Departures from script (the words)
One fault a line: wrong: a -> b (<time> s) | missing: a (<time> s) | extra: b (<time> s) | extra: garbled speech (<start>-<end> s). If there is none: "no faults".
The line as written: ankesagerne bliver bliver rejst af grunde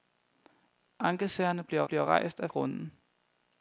no faults